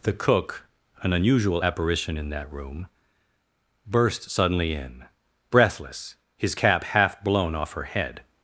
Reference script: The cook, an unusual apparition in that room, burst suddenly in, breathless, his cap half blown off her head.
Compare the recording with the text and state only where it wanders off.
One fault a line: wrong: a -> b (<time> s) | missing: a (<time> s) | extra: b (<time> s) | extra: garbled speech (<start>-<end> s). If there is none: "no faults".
no faults